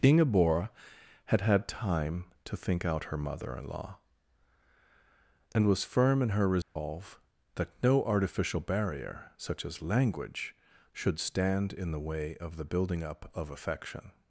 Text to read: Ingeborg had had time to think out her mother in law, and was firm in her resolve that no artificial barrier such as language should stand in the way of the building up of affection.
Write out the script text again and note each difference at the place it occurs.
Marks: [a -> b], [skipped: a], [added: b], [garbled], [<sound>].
Ingeborg had had time to think out her mother in law, and was firm in her resolve [dropout] that no artificial barrier such as language should stand in the way of the building up of affection.